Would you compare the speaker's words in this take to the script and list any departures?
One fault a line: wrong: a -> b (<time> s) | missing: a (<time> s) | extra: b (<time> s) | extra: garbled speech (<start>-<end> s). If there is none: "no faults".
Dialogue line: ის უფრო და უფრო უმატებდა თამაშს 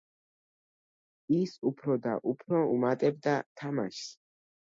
no faults